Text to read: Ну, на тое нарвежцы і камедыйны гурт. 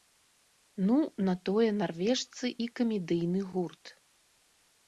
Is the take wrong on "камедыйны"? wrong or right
right